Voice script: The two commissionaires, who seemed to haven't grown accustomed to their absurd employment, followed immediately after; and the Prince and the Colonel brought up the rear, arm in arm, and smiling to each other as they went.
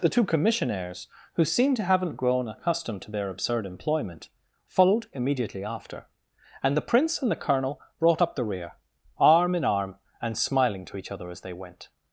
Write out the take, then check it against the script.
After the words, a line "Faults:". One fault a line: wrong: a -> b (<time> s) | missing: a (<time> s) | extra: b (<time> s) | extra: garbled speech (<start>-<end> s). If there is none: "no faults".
The two commissionaires, who seemed to haven't grown accustomed to their absurd employment, followed immediately after; and the Prince and the Colonel brought up the rear, arm in arm, and smiling to each other as they went.
Faults:
no faults